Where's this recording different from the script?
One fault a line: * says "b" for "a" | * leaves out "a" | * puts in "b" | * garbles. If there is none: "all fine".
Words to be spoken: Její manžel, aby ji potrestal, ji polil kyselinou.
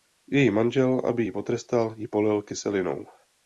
all fine